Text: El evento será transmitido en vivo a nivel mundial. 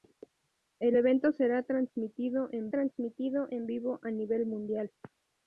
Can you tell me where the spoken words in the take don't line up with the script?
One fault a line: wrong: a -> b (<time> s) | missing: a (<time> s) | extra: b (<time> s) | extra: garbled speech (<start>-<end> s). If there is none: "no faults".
extra: transmitido en (2.7 s)